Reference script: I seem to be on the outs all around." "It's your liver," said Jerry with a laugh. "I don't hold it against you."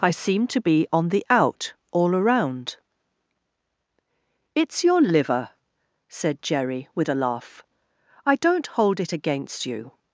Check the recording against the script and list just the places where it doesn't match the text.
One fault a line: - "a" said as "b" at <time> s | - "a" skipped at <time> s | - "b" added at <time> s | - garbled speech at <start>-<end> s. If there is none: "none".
- "outs" said as "out" at 1.3 s